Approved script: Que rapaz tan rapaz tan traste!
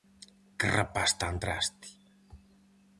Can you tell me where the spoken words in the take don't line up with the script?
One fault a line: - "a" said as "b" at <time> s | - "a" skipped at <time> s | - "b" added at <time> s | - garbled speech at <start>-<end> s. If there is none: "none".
- "rapaz tan" skipped at 1.4 s